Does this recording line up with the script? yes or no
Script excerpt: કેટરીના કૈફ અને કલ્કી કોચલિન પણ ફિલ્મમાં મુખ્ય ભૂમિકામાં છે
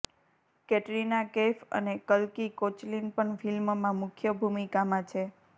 yes